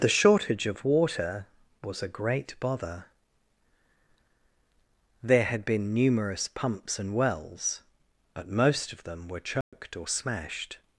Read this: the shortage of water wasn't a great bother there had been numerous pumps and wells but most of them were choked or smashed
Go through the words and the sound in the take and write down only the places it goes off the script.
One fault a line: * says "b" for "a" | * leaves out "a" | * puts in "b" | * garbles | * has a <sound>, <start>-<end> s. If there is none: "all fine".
* says "was" for "wasn't"
* has a dropout, 9.6-9.7 s